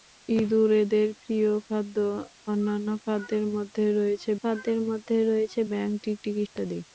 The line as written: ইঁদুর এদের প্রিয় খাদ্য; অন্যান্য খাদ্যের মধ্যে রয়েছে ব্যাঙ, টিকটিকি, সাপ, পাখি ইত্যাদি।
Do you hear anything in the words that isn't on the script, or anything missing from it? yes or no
yes